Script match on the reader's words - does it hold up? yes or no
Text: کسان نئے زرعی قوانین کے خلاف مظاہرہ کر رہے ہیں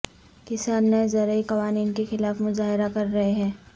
yes